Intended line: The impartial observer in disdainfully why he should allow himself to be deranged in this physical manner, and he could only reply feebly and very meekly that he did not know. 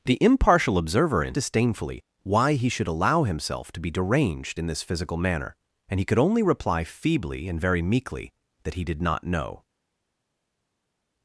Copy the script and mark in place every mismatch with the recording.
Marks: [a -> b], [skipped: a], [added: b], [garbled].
The impartial observer in disdainfully why he should allow himself to be deranged in this physical manner, and he could only reply feebly and very meekly that he did not know.